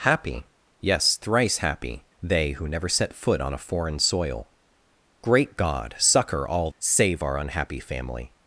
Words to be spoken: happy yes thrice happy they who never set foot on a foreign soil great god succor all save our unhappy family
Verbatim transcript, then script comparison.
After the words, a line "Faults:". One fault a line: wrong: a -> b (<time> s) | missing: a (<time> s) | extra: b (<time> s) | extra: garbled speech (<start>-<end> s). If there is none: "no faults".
happy yes thrice happy they who never set foot on a foreign soil great god succor all save our unhappy family
Faults:
no faults